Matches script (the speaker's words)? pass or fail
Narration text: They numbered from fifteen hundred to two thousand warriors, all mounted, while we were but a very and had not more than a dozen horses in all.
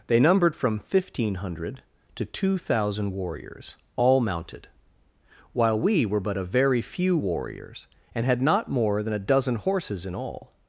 fail